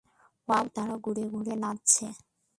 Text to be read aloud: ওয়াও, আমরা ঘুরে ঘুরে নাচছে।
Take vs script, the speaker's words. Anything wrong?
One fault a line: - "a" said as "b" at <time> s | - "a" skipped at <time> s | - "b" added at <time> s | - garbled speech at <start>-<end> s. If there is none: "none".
- "আমরা" said as "তারা" at 0.8 s